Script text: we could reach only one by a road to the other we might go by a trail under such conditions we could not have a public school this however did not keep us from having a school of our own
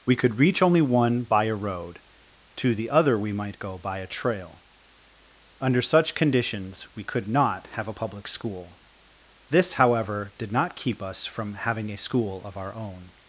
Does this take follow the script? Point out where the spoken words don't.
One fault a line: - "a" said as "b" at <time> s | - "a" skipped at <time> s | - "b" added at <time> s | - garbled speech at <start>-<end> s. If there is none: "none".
none